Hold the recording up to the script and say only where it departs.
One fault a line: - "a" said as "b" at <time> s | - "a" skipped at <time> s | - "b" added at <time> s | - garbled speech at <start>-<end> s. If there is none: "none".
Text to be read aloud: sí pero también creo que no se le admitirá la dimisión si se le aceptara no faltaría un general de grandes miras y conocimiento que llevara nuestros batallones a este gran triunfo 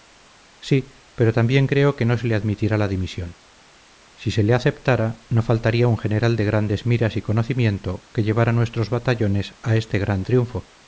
none